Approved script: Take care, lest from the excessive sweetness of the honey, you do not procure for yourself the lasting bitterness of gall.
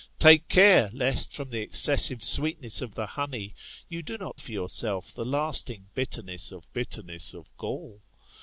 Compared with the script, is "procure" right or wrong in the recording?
wrong